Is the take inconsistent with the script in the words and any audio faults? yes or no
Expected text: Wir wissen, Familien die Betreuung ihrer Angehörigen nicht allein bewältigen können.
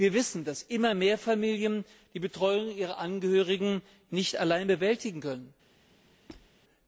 yes